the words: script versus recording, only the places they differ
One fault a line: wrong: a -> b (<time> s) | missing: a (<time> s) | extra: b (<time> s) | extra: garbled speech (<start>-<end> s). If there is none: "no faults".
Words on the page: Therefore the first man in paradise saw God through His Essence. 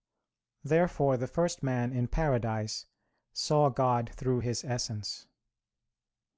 no faults